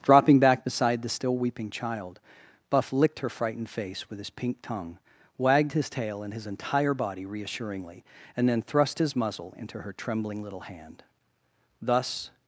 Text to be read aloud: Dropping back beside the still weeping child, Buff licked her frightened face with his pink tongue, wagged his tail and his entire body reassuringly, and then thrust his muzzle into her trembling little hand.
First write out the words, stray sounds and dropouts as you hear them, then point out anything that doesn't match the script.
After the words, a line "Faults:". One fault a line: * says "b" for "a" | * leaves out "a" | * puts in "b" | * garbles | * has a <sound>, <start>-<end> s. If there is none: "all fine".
Dropping back beside the still weeping child, Buff licked her frightened face with his pink tongue, wagged his tail and his entire body reassuringly, and then thrust his muzzle into her trembling little hand. Thus
Faults:
* puts in "Thus"